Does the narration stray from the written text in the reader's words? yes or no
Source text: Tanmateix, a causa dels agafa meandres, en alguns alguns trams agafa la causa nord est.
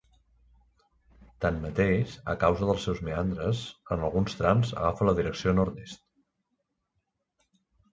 yes